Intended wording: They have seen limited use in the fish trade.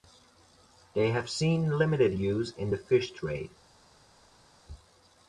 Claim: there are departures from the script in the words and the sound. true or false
false